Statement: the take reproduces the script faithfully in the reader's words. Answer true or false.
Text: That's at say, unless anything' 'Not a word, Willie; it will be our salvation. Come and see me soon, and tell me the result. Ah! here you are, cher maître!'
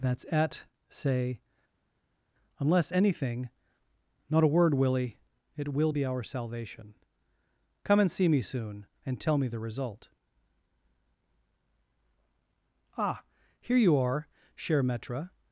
true